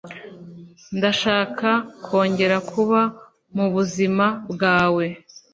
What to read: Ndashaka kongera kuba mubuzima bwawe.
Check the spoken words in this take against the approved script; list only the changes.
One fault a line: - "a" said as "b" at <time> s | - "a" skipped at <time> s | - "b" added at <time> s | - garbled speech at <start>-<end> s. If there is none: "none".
none